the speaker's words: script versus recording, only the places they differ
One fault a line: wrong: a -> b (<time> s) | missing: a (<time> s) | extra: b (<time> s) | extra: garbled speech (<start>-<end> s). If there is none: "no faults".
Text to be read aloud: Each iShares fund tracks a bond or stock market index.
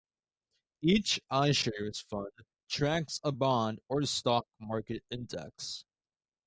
no faults